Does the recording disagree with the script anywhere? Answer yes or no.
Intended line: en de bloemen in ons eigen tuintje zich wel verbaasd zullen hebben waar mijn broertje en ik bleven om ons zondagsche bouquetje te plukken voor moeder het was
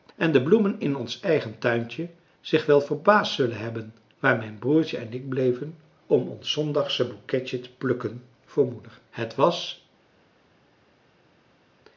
no